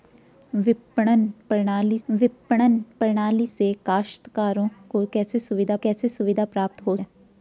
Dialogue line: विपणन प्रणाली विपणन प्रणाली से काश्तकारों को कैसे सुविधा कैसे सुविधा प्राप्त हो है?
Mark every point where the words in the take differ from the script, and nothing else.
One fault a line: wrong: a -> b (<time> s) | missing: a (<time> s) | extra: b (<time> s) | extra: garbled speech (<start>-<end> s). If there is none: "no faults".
no faults